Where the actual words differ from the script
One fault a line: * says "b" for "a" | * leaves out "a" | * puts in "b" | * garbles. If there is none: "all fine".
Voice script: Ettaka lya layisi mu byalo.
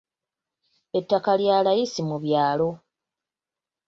all fine